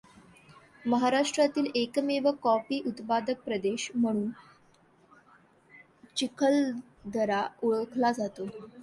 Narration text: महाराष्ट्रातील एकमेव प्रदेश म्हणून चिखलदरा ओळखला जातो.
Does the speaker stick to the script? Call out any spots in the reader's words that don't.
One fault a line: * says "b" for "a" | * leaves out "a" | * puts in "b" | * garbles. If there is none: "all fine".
* puts in "कॉफी उत्पादक"